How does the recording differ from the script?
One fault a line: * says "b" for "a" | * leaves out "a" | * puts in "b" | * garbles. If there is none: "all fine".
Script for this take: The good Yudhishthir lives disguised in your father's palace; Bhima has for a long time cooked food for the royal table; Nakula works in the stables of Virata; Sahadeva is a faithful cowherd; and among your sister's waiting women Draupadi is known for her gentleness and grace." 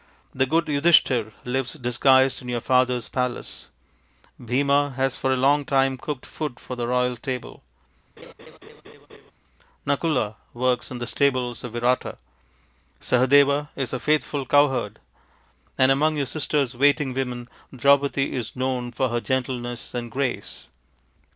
all fine